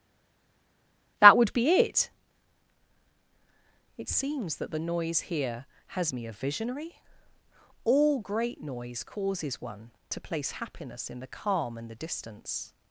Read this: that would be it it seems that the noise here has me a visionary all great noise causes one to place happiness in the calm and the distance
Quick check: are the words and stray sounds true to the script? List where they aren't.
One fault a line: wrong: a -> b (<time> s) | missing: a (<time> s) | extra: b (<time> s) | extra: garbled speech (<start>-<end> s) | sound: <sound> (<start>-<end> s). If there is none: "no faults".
no faults